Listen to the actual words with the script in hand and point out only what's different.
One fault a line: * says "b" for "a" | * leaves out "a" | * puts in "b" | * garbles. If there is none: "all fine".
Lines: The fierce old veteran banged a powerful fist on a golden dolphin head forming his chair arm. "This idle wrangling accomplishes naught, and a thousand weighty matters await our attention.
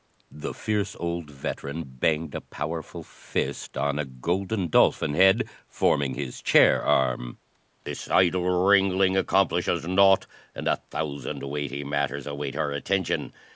all fine